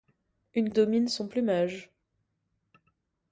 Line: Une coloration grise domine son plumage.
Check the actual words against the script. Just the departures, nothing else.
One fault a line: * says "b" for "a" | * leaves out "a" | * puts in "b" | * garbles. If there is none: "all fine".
* leaves out "coloration grise"